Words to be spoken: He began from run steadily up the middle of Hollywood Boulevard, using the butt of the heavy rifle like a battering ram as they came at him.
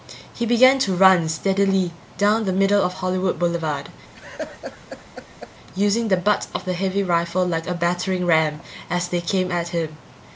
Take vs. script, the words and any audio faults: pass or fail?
fail